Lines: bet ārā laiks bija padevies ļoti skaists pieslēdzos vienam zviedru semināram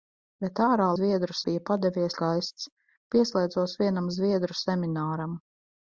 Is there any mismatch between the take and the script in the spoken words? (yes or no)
yes